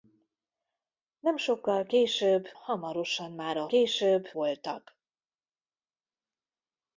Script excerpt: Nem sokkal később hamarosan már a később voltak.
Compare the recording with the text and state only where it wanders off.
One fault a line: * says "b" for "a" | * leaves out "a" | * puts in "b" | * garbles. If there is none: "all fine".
all fine